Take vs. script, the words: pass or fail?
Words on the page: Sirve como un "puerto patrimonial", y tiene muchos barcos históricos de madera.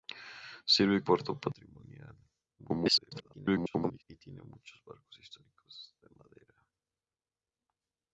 fail